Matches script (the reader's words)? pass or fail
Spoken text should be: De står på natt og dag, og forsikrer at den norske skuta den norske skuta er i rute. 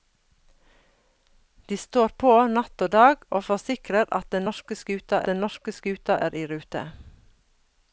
pass